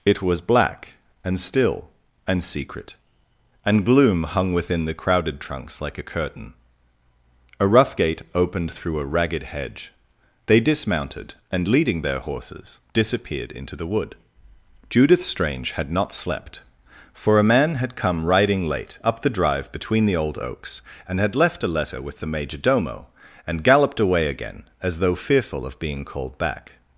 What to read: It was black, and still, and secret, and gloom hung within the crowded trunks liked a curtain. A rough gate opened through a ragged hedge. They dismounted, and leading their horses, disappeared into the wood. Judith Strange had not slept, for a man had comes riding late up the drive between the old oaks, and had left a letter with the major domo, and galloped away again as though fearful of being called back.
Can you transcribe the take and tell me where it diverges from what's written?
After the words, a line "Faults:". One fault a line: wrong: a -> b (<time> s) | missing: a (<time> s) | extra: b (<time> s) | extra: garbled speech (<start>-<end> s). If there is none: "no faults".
It was black, and still, and secret, and gloom hung within the crowded trunks like a curtain. A rough gate opened through a ragged hedge. They dismounted, and leading their horses, disappeared into the wood. Judith Strange had not slept, for a man had come riding late up the drive between the old oaks, and had left a letter with the major domo, and galloped away again as though fearful of being called back.
Faults:
wrong: liked -> like (5.8 s)
wrong: comes -> come (18.0 s)